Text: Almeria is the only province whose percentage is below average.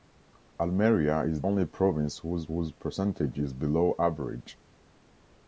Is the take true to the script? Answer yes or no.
no